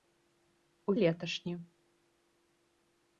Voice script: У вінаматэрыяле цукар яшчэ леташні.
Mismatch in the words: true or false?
true